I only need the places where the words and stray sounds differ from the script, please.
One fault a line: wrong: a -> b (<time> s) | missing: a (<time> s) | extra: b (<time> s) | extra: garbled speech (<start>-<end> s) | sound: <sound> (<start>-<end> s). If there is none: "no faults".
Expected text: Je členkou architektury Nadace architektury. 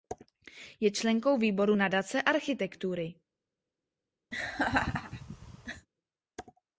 wrong: architektury -> výboru (1.4 s)
sound: laugh (4.3-5.9 s)